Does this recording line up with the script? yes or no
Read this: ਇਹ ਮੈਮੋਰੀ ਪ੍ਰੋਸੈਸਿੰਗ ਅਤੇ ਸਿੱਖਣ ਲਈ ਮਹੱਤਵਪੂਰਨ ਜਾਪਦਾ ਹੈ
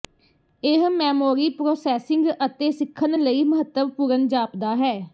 yes